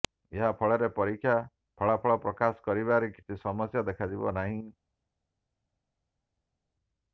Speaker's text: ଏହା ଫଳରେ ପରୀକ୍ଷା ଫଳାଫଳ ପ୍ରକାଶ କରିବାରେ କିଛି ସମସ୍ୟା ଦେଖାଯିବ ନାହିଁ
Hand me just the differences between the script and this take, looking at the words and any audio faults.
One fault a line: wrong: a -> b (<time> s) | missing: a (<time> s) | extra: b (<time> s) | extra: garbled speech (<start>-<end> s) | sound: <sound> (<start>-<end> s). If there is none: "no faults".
no faults